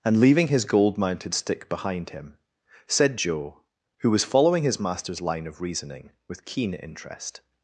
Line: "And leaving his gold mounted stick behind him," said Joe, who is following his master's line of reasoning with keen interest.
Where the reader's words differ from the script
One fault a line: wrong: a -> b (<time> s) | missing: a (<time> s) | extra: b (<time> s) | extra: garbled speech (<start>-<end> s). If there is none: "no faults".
wrong: is -> was (4.1 s)